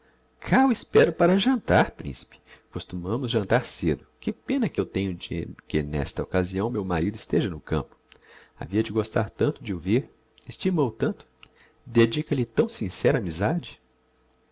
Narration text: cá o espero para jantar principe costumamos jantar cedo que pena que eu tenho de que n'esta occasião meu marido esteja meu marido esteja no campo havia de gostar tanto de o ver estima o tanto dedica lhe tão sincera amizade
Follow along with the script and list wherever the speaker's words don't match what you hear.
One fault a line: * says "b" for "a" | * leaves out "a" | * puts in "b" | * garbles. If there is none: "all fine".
* leaves out "meu marido esteja"